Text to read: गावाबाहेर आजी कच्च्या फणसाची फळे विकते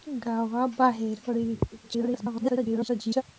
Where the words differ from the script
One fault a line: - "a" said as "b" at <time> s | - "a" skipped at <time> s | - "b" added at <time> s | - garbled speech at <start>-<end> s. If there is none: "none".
- "आजी कच्च्या फणसाची" skipped at 1.2 s
- garbled speech at 1.8-3.2 s